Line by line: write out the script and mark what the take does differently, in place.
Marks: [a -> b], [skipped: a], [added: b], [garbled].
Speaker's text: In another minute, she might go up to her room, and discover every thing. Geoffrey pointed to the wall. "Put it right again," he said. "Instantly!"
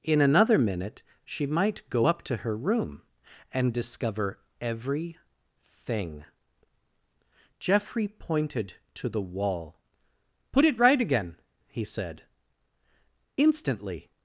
In another minute, she might go up to her room, and discover every thing. Geoffrey pointed to the wall. "Put it right again," he said. "Instantly!"